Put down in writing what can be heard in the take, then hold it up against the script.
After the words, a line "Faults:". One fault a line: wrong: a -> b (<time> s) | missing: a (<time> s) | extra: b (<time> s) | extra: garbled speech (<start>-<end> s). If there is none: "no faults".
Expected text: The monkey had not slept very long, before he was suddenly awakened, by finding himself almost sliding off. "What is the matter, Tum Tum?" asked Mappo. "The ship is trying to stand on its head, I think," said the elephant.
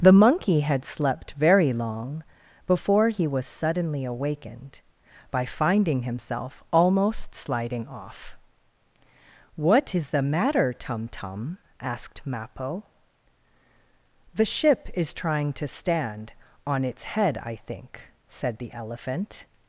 The monkey had slept very long, before he was suddenly awakened, by finding himself almost sliding off. "What is the matter, Tum Tum?" asked Mappo. "The ship is trying to stand on its head, I think," said the elephant.
Faults:
missing: not (0.8 s)